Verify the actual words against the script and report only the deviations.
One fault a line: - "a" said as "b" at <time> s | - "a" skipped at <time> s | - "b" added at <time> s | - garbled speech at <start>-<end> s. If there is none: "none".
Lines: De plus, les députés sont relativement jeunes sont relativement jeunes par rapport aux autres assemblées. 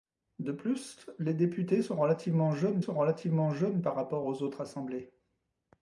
none